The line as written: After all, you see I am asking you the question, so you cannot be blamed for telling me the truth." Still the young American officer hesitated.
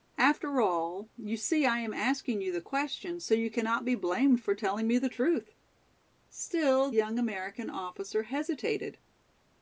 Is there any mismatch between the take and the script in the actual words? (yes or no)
yes